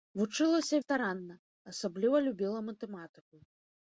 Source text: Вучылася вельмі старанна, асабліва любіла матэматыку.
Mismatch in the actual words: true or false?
true